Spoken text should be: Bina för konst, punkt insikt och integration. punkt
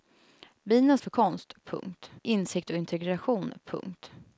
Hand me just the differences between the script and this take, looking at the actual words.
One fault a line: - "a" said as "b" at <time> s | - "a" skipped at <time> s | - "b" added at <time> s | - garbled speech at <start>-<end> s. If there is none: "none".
none